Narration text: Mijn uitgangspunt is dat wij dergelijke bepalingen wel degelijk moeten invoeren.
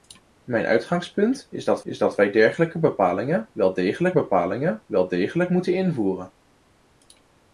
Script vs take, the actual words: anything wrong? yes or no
yes